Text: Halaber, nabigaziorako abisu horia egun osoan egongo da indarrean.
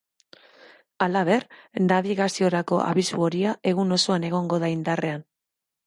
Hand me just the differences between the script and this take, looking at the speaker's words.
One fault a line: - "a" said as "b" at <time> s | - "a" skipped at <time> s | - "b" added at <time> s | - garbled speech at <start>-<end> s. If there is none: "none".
none